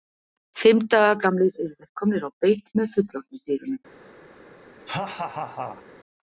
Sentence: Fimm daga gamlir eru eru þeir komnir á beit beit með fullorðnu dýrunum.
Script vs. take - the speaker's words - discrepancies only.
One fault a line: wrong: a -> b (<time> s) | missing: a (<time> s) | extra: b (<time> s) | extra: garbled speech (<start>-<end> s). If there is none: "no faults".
missing: eru (1.8 s)
missing: beit (2.7 s)